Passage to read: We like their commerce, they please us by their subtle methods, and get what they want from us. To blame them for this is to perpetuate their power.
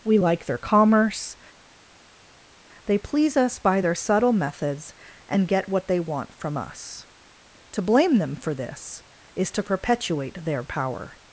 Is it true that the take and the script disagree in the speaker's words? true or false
false